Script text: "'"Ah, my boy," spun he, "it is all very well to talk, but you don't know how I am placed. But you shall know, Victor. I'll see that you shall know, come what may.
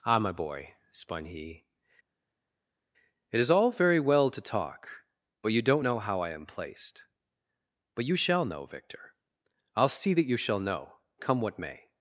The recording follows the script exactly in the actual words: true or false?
true